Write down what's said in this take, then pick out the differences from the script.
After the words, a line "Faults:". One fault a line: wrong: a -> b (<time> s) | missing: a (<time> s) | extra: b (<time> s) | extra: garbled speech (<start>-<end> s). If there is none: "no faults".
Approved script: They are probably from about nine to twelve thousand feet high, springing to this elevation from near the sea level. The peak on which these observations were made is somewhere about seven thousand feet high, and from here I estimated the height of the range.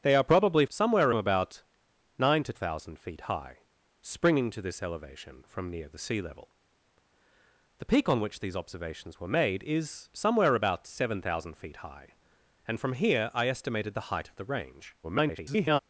They are probably somewhere about nine to thousand feet high, springing to this elevation from near the sea level. The peak on which these observations were made is somewhere about seven thousand feet high, and from here I estimated the height of the range. [garbled]
Faults:
wrong: from -> somewhere (0.7 s)
missing: twelve (2.5 s)
extra: garbled speech (15.0-15.8 s)